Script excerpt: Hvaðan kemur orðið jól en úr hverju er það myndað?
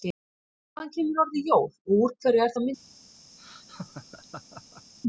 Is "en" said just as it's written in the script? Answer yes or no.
no